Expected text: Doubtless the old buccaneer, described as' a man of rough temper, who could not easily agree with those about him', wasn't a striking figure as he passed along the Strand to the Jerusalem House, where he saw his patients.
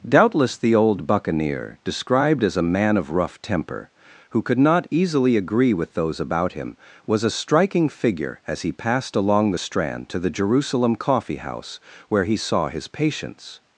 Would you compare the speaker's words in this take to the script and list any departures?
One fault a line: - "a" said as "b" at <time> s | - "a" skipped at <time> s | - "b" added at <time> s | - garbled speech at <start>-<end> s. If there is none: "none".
- "wasn't" said as "was" at 7.0 s
- "Coffee" added at 10.9 s